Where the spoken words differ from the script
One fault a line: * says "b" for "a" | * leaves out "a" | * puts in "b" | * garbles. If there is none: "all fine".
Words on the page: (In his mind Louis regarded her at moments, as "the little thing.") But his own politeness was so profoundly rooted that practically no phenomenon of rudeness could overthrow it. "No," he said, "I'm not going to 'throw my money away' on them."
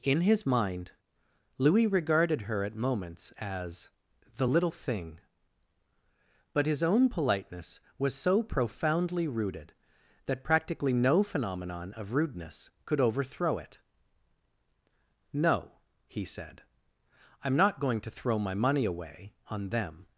all fine